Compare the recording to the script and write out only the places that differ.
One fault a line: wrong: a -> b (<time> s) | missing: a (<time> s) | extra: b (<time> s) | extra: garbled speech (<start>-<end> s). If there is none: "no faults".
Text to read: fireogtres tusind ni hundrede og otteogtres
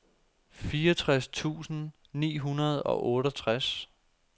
no faults